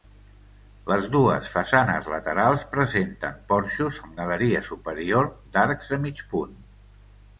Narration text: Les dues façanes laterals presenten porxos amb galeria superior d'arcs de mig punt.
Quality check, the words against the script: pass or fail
pass